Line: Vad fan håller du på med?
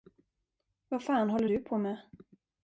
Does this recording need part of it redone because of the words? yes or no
no